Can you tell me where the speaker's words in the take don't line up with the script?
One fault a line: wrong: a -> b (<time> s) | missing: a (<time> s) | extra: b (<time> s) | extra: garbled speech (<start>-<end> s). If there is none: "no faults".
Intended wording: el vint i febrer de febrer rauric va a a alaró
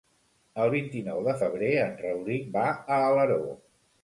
wrong: febrer -> nou (1.1 s)
extra: en (1.9 s)
missing: a (3.0 s)